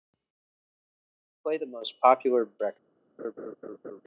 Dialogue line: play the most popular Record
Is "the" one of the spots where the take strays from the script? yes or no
no